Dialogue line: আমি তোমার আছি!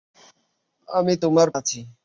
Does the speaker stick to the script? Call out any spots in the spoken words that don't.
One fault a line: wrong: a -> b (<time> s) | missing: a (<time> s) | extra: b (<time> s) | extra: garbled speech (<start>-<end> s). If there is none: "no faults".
no faults